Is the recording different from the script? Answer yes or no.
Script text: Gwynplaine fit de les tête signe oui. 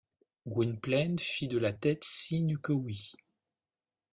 yes